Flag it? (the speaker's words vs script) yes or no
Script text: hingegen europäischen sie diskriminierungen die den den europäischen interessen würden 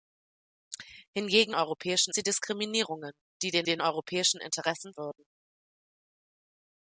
no